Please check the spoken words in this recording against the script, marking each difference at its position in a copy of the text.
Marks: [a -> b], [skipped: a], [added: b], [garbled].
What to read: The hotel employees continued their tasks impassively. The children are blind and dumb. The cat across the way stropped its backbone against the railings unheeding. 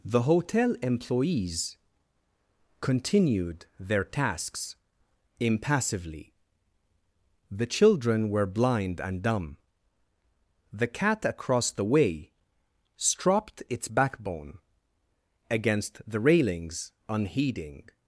The hotel employees continued their tasks impassively. The children [are -> were] blind and dumb. The cat across the way stropped its backbone against the railings unheeding.